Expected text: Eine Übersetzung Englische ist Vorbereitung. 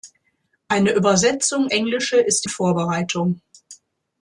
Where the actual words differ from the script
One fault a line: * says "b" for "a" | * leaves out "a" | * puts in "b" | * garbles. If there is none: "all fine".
all fine